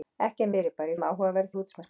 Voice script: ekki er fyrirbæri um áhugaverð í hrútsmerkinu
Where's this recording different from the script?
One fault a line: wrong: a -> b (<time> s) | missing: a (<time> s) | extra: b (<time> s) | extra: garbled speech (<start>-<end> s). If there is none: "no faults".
no faults